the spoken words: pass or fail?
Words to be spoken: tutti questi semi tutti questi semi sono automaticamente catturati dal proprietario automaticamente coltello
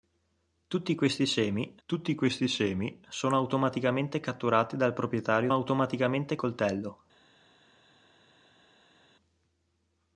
pass